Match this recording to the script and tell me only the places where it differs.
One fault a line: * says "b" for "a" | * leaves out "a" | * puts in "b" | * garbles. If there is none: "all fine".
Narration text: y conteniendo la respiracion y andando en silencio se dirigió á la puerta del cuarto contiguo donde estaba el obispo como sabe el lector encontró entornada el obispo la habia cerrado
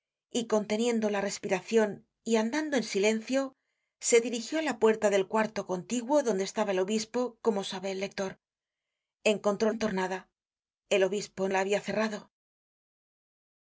all fine